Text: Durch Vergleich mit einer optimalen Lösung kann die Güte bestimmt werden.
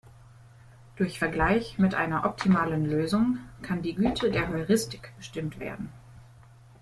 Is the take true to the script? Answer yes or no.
no